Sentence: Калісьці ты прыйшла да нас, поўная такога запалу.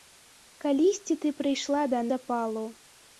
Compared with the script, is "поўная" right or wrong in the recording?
wrong